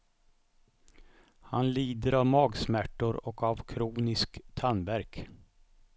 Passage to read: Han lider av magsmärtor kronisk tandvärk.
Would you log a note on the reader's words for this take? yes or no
yes